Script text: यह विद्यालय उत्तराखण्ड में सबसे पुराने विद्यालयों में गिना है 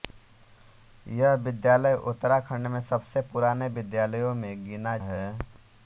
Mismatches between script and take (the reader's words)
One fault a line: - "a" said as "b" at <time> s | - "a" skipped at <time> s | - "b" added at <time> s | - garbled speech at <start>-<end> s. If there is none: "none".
none